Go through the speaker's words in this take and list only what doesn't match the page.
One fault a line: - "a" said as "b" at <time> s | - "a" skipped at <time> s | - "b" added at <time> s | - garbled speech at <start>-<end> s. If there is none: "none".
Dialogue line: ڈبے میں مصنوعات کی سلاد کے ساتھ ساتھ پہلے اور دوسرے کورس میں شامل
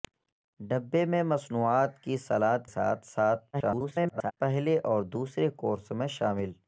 - "کے" skipped at 2.6 s
- garbled speech at 3.5-4.3 s